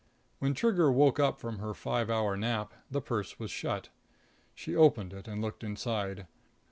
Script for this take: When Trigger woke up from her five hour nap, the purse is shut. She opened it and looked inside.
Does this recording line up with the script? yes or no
no